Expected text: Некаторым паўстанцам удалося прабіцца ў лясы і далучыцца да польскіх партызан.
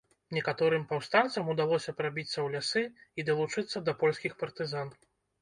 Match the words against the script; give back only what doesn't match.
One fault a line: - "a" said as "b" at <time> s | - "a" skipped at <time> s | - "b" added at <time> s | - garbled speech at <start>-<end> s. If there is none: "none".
none